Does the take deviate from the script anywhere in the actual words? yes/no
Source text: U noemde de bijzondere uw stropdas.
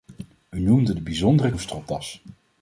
no